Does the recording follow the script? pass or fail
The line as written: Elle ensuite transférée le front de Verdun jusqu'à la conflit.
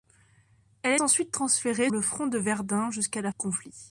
pass